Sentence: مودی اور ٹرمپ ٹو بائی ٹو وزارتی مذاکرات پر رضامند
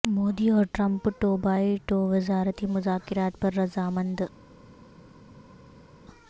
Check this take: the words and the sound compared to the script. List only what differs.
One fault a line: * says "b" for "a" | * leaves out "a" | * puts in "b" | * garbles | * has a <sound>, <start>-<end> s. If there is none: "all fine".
all fine